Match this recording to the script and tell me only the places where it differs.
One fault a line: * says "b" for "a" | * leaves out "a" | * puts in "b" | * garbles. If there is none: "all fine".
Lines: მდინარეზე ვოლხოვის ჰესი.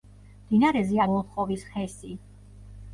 all fine